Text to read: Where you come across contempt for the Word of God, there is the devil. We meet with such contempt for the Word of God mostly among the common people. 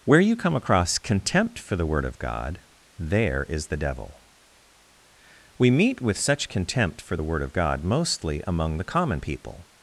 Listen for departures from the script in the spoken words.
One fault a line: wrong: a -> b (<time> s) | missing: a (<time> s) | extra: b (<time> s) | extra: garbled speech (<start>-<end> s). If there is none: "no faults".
no faults